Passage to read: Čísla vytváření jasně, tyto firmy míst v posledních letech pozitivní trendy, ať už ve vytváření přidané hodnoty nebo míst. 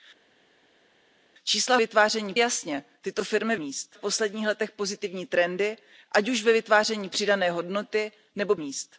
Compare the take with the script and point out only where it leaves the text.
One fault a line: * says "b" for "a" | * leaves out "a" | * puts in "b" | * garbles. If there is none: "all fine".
all fine